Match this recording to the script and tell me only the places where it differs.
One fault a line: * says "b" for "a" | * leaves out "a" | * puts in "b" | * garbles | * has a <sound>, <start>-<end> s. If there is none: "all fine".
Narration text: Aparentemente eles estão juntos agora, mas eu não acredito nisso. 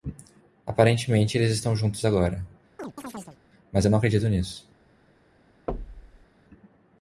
* has a chirp, 2.8-3.4 s
* has a thud, 5.7-6.3 s